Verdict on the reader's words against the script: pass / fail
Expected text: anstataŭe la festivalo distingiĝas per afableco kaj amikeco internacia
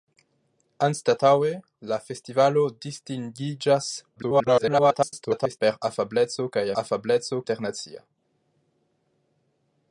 fail